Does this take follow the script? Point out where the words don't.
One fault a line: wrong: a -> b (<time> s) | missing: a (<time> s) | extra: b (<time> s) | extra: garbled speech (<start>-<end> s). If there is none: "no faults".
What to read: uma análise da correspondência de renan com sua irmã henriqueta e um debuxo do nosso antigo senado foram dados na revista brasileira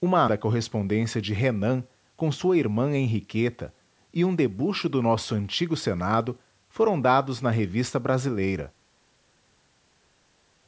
missing: análise (0.2 s)